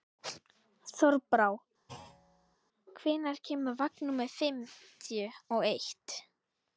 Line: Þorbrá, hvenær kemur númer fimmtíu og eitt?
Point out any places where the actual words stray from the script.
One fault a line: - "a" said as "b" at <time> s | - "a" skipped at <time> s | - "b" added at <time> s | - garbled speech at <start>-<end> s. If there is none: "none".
- "vagn" added at 3.8 s